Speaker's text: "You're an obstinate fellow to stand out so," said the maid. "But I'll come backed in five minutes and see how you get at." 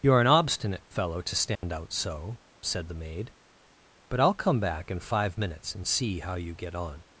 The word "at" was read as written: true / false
false